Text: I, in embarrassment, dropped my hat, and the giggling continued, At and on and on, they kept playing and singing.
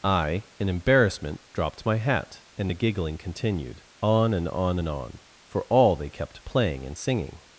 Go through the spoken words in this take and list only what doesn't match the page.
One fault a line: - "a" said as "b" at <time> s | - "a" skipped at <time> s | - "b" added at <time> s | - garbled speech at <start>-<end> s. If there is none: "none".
- "At" said as "On" at 4.0 s
- "for all" added at 5.5 s